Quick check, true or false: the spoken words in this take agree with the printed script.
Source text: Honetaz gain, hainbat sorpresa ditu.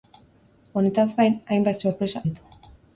true